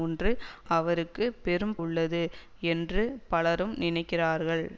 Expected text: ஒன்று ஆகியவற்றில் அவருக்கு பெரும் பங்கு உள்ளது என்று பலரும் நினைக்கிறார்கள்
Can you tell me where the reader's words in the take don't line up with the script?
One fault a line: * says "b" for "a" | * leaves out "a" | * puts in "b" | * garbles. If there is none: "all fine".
* leaves out "ஆகியவற்றில்"
* leaves out "பங்கு"